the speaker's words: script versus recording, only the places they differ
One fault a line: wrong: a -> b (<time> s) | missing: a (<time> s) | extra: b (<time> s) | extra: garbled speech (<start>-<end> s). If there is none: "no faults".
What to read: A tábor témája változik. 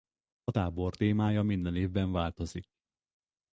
extra: minden évben (1.4 s)